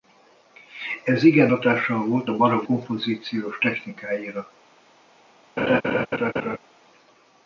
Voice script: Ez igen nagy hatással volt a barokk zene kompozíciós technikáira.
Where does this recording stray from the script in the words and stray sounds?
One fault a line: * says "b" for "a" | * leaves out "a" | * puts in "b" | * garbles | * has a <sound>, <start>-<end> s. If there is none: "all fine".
* leaves out "nagy"
* leaves out "zene"
* has a laugh, 5.6-6.6 s